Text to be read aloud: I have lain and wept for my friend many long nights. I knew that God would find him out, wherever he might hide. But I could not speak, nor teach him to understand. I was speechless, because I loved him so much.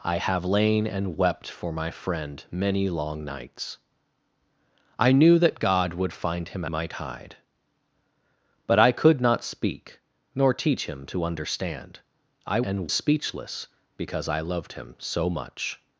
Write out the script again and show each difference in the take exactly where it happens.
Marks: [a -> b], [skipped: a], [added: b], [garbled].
I have lain and wept for my friend many long nights. I knew that God would find him [skipped: out, wherever he] might hide. But I could not speak, nor teach him to understand. I [was -> and] speechless, because I loved him so much.